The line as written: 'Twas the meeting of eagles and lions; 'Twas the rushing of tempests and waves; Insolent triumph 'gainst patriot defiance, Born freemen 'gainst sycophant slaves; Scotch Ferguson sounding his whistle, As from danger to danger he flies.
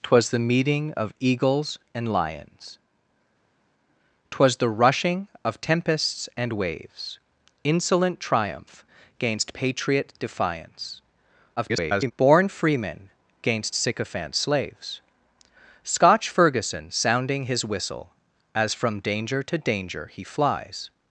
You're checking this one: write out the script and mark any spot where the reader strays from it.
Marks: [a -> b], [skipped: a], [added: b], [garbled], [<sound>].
'Twas the meeting of eagles and lions; 'Twas the rushing of tempests and waves; Insolent triumph 'gainst patriot defiance, [garbled] Born freemen 'gainst sycophant slaves; Scotch Ferguson sounding his whistle, As from danger to danger he flies.